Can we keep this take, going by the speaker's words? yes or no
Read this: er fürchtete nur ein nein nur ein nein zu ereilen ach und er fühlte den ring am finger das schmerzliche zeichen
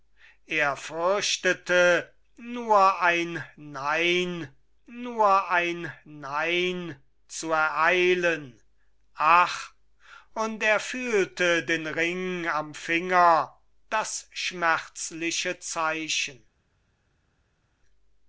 yes